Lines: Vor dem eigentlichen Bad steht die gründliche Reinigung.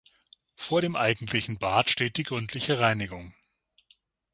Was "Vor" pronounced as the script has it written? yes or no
yes